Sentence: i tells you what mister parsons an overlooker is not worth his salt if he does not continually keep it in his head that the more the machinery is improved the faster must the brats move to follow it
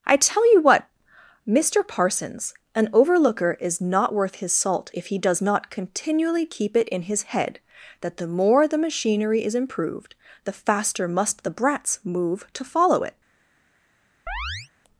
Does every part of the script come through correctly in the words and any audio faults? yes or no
no